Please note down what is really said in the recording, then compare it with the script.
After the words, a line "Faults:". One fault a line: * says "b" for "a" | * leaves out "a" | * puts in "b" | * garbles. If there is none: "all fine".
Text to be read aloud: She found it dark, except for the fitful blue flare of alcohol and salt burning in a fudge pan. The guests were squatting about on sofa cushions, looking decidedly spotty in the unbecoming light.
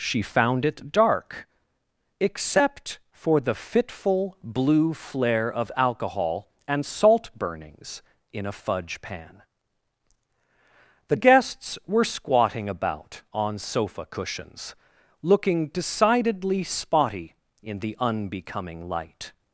She found it dark, except for the fitful blue flare of alcohol and salt burnings in a fudge pan. The guests were squatting about on sofa cushions, looking decidedly spotty in the unbecoming light.
Faults:
* says "burnings" for "burning"